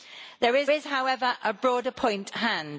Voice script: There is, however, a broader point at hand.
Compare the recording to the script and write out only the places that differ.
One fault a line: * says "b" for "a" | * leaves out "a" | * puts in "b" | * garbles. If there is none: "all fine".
* puts in "is"
* leaves out "at"